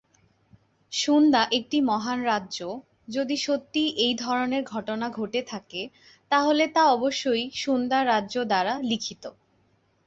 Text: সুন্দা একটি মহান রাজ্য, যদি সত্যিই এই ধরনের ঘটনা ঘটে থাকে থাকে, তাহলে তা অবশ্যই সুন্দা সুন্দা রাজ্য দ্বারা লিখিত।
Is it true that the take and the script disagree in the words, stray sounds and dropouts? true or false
true